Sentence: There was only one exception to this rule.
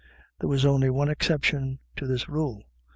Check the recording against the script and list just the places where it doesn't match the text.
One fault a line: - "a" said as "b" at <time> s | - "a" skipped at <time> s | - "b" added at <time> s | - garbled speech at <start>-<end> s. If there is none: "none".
none